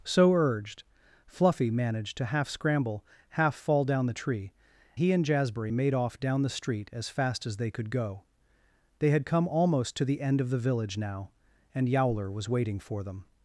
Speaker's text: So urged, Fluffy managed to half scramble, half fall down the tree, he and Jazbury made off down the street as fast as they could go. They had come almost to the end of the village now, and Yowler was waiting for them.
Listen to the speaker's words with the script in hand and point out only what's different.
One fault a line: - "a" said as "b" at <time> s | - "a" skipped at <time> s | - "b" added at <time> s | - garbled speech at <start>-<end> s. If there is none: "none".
none